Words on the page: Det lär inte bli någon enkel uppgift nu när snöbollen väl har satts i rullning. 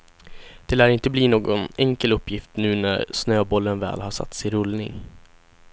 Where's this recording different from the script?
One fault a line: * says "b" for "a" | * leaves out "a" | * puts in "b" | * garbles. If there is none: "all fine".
all fine